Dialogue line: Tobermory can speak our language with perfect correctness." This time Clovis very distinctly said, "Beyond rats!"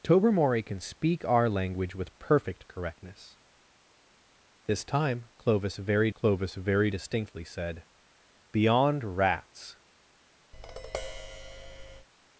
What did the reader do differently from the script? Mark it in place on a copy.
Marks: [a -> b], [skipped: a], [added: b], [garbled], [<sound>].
Tobermory can speak our language with perfect correctness." This time Clovis very [added: Clovis very] distinctly said, "Beyond rats!" [tap]